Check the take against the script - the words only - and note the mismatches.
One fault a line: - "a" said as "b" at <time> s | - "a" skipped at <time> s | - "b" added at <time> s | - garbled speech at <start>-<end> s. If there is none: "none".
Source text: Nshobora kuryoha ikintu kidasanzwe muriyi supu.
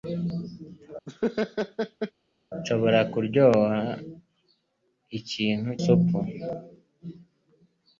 - "kidasanzwe muriyi" skipped at 5.7 s